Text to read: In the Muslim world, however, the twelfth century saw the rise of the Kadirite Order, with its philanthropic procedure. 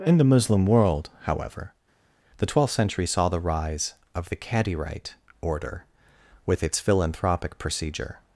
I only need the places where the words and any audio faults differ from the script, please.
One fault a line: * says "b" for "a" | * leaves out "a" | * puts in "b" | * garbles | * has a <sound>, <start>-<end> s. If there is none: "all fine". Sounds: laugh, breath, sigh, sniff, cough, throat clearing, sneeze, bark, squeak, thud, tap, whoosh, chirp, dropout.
all fine